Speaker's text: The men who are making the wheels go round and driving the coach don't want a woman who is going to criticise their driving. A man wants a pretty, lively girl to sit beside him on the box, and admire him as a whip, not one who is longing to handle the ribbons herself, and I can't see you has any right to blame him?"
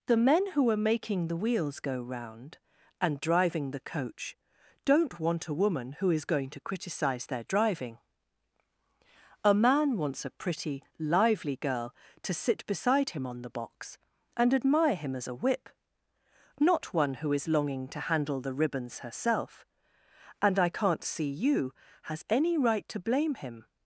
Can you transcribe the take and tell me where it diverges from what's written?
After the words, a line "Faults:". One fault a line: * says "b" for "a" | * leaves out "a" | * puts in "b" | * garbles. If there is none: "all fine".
The men who are making the wheels go round and driving the coach don't want a woman who is going to criticise their driving. A man wants a pretty, lively girl to sit beside him on the box, and admire him as a whip, not one who is longing to handle the ribbons herself, and I can't see you has any right to blame him?"
Faults:
all fine